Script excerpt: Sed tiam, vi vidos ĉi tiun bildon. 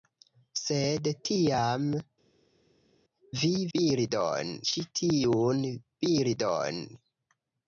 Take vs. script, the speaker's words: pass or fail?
fail